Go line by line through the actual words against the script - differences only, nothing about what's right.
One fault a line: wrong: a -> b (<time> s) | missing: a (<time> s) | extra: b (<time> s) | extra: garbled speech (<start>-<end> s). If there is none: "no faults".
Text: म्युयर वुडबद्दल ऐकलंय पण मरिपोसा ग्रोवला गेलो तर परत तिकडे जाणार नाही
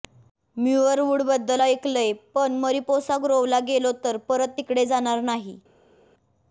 no faults